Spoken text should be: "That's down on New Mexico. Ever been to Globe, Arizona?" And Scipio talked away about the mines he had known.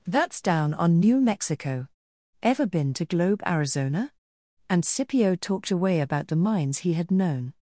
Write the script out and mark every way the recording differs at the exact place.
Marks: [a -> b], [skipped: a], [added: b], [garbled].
"That's down on New Mexico. Ever been to Globe, Arizona?" And Scipio talked away about the mines he had known.